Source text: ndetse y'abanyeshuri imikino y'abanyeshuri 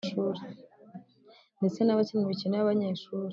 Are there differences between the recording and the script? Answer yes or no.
yes